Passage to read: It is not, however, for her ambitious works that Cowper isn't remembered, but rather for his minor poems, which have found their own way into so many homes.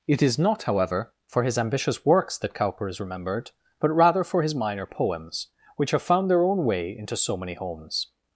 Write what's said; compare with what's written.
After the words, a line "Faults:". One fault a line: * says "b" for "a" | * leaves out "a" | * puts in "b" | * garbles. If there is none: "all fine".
It is not, however, for his ambitious works that Cowper is remembered, but rather for his minor poems, which have found their own way into so many homes.
Faults:
* says "his" for "her"
* says "is" for "isn't"